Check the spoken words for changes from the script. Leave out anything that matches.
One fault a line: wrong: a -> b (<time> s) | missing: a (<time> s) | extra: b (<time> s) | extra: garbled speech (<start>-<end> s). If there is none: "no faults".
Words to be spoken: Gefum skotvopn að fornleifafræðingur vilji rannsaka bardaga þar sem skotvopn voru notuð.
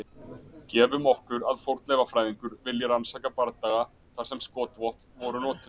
wrong: skotvopn -> okkur (1.1 s)